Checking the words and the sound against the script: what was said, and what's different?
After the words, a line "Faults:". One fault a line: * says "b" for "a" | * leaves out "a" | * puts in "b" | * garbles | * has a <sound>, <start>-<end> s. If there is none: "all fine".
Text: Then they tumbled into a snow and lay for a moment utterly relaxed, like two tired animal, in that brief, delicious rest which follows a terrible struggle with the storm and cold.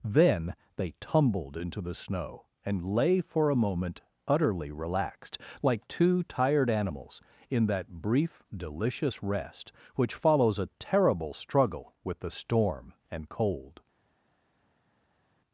Then they tumbled into the snow and lay for a moment utterly relaxed, like two tired animals, in that brief, delicious rest which follows a terrible struggle with the storm and cold.
Faults:
* says "the" for "a"
* says "animals" for "animal"